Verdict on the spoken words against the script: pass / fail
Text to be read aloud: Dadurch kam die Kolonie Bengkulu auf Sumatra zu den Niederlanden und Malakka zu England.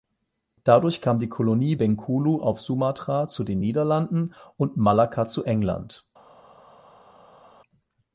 pass